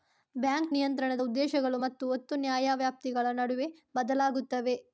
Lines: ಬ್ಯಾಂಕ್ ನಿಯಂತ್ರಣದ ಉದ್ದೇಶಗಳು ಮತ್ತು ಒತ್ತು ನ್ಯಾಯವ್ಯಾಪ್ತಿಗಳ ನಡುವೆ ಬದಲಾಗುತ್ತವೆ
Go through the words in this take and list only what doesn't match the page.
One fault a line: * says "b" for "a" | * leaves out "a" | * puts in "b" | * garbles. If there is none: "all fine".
all fine